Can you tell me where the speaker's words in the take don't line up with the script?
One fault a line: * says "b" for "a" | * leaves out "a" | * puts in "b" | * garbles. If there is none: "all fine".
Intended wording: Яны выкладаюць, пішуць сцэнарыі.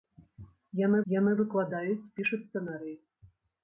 * puts in "яны"